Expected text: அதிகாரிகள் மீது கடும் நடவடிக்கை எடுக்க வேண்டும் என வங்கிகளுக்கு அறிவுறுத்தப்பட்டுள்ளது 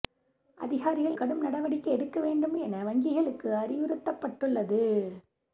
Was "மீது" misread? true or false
true